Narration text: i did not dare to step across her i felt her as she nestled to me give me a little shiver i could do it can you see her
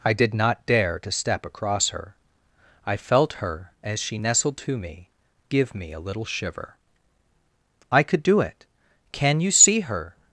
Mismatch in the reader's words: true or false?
false